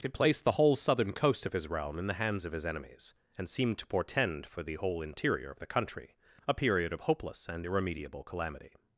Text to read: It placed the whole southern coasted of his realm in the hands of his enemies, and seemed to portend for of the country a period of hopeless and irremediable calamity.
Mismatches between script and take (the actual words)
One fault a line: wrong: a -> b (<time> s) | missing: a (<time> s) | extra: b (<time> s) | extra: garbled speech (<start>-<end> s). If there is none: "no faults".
wrong: coasted -> coast (1.1 s)
extra: the whole interior (4.6 s)